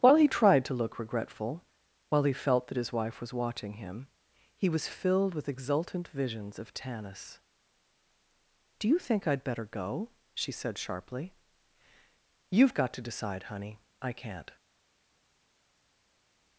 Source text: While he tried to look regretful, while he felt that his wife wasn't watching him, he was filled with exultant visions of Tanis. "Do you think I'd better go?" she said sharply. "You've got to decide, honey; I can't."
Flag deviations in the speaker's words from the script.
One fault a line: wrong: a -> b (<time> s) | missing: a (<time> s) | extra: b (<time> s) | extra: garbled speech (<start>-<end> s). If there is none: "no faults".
wrong: wasn't -> was (3.2 s)